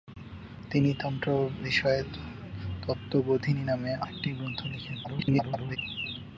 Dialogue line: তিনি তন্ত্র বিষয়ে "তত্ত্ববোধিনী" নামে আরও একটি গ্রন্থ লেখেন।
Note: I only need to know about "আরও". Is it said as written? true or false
false